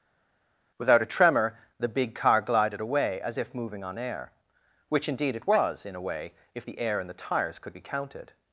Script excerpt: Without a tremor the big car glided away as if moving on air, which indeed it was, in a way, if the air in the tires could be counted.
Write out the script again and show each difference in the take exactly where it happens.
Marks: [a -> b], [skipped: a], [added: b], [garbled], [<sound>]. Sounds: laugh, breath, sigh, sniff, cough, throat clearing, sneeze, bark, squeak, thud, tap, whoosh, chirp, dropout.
Without a tremor the big car glided away as if moving on air, which indeed it was, in a way, if the air in the tires could be counted.